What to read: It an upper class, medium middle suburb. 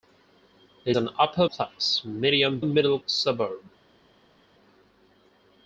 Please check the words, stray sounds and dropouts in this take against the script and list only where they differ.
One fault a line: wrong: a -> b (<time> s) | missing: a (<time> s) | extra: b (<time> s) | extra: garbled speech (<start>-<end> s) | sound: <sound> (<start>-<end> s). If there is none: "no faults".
no faults